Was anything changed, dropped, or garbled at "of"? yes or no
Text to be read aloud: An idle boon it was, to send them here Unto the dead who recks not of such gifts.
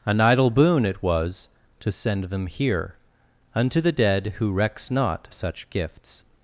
yes